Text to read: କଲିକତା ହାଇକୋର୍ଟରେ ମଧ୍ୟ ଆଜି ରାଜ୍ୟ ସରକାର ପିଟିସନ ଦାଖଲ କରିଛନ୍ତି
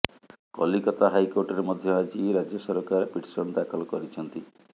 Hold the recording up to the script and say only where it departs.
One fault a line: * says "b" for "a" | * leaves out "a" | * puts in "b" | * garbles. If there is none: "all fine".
all fine